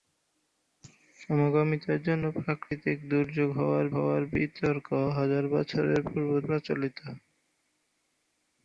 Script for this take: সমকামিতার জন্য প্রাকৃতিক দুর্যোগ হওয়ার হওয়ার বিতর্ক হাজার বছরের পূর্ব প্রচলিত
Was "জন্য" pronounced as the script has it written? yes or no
yes